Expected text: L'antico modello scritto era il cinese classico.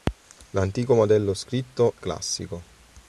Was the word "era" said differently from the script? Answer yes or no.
yes